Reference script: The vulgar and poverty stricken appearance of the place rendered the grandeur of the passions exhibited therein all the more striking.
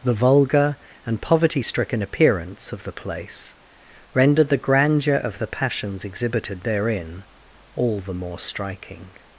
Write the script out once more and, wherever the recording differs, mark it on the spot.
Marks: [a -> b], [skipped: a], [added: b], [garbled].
The vulgar and poverty stricken appearance of the place rendered the grandeur of the passions exhibited therein all the more striking.